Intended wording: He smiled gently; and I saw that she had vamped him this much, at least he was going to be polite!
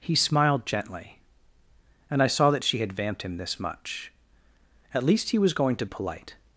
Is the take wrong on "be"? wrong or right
wrong